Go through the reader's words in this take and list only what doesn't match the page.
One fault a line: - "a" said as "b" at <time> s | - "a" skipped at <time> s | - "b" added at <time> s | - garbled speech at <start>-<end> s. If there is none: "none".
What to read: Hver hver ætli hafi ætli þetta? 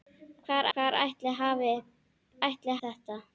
none